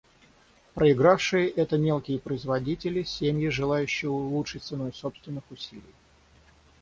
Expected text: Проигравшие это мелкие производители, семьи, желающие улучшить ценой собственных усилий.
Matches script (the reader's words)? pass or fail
pass